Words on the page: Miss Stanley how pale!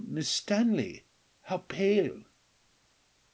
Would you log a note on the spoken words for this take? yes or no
no